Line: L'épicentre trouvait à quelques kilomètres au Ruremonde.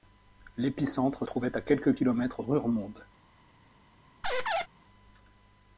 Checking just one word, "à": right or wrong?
right